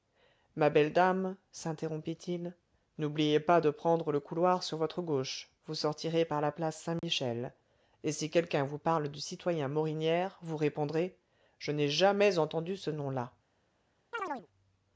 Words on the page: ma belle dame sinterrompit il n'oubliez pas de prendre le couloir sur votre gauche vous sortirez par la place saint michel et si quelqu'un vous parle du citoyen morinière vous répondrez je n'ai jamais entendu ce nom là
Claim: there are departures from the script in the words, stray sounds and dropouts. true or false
true